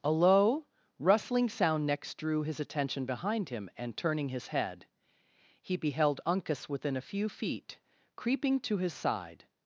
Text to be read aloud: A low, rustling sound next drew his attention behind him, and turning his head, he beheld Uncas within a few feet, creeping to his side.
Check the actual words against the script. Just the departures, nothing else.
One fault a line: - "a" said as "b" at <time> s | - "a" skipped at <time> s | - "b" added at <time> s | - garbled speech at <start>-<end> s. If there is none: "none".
none